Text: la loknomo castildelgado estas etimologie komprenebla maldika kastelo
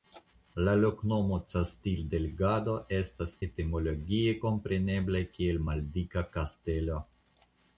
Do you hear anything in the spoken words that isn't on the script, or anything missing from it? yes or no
yes